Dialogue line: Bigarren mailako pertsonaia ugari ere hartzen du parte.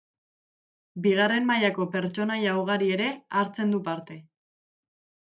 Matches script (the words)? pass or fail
pass